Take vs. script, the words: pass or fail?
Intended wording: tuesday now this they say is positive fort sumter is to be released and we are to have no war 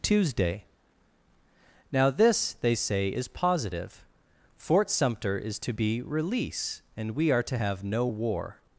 fail